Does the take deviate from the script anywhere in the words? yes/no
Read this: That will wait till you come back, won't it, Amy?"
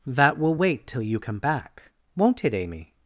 no